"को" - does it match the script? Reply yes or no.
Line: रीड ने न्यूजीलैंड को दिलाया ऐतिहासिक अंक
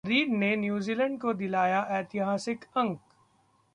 yes